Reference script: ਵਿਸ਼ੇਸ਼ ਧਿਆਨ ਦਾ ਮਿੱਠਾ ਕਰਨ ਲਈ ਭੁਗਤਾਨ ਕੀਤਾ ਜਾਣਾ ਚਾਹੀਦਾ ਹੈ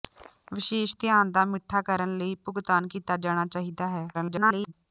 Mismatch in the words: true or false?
true